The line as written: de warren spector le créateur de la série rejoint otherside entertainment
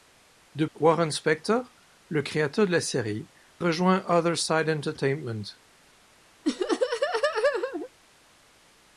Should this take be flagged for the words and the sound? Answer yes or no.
yes